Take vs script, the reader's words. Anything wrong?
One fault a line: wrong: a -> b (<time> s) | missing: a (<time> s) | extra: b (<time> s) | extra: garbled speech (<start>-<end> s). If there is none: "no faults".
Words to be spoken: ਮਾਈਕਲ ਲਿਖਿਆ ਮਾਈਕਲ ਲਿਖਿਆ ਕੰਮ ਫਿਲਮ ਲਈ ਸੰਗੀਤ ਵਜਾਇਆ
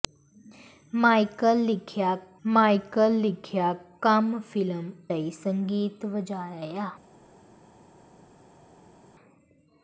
no faults